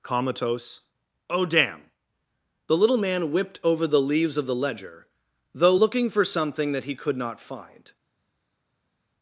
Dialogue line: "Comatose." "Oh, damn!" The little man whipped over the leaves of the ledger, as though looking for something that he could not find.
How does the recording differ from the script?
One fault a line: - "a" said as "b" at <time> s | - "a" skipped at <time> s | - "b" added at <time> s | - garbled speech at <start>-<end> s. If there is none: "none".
- "as" skipped at 5.1 s